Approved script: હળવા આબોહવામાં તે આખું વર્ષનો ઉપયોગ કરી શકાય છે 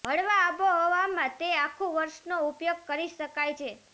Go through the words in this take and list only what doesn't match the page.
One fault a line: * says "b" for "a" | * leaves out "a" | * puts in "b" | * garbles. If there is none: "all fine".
all fine